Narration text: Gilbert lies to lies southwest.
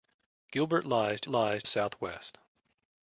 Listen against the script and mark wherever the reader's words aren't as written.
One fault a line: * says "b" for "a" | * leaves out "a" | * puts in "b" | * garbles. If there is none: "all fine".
all fine